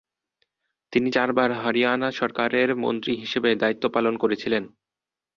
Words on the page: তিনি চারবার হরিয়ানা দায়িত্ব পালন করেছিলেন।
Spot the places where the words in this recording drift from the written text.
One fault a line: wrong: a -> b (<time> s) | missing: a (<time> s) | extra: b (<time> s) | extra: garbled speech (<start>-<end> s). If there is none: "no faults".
extra: সরকারের মন্ত্রী হিসেবে (2.1 s)